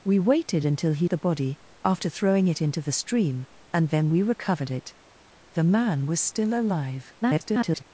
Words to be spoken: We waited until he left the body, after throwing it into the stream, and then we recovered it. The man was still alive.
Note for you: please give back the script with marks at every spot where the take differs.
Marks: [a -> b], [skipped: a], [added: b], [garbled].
We waited until he [skipped: left] the body, after throwing it into the stream, and then we recovered it. The man was still alive. [garbled]